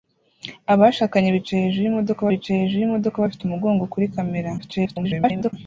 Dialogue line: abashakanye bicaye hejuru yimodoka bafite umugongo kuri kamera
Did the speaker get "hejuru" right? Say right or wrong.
right